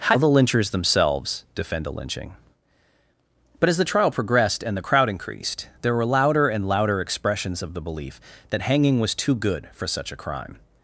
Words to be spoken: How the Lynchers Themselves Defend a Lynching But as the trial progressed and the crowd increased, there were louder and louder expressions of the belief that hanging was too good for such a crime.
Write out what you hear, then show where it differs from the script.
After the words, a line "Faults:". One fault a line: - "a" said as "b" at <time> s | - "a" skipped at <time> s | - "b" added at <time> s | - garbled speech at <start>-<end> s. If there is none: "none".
How the Lynchers Themselves Defend a Lynching But as the trial progressed and the crowd increased, there were louder and louder expressions of the belief that hanging was too good for such a crime.
Faults:
none